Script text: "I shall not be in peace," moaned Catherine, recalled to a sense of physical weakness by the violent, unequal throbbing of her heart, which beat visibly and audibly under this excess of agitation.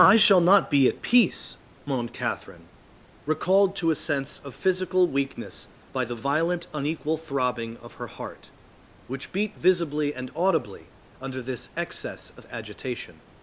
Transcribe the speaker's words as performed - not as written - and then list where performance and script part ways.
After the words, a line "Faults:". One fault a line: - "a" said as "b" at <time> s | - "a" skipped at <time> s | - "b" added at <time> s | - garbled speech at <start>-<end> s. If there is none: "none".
"I shall not be at peace," moaned Catherine, recalled to a sense of physical weakness by the violent, unequal throbbing of her heart, which beat visibly and audibly under this excess of agitation.
Faults:
- "in" said as "at" at 0.9 s